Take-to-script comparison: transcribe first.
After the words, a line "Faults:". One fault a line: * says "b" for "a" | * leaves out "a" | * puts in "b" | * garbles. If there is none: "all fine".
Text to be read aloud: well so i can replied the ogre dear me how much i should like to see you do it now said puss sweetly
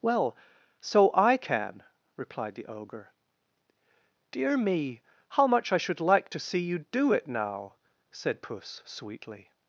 well so i can replied the ogre dear me how much i should like to see you do it now said puss sweetly
Faults:
all fine